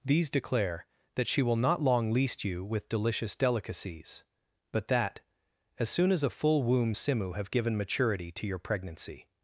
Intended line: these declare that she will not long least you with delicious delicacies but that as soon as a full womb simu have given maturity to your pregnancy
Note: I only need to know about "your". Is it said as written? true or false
true